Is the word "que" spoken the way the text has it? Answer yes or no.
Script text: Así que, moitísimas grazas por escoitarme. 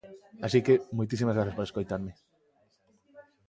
yes